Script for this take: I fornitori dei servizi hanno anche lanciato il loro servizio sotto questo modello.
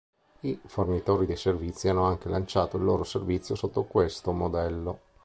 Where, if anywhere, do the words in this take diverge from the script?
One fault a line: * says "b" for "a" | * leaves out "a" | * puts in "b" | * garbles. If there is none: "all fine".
all fine